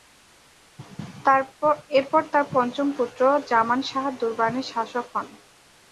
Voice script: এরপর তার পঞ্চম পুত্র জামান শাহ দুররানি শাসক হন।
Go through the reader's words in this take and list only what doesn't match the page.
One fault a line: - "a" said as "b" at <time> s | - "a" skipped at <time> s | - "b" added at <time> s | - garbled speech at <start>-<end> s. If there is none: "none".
none